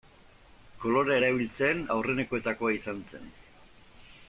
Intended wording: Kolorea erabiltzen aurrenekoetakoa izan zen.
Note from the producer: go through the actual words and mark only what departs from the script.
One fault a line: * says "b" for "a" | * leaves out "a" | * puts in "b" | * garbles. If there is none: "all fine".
all fine